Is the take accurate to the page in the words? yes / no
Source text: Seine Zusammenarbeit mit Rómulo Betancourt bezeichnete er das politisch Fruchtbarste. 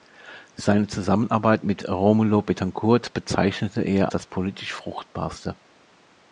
yes